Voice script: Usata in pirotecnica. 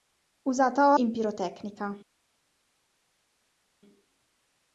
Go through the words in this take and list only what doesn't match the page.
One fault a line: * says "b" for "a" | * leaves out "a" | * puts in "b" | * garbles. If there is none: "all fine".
all fine